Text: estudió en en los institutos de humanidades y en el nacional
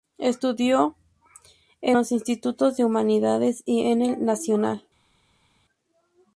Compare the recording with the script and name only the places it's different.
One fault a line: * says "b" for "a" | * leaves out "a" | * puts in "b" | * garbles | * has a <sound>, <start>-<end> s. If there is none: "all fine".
* leaves out "en"